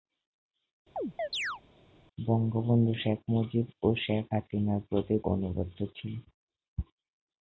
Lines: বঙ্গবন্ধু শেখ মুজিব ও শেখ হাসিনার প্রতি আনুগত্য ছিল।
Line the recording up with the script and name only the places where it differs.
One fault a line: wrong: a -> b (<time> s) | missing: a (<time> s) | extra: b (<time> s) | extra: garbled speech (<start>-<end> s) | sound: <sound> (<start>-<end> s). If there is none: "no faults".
sound: chirp (1.0-1.6 s)